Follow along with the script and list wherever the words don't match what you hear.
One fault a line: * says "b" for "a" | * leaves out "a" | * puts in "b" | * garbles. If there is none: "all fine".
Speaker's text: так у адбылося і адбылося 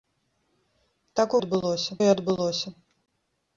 all fine